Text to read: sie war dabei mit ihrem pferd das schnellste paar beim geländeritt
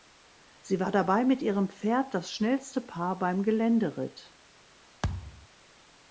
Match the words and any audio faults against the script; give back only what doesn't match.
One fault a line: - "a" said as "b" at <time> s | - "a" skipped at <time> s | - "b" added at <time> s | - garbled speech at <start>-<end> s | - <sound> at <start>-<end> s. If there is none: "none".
- thud at 5.0-5.5 s